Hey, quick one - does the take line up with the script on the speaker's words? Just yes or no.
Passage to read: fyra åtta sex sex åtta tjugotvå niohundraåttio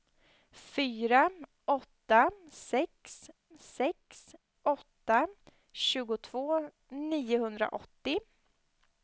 yes